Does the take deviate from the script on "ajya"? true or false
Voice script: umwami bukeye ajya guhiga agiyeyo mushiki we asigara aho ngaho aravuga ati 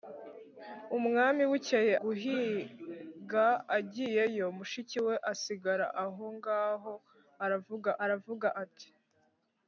true